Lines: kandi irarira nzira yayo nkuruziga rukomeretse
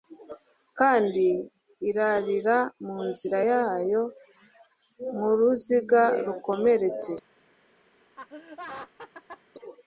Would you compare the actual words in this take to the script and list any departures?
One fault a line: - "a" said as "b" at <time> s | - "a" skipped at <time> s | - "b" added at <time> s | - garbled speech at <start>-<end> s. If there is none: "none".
- "mu" added at 2.8 s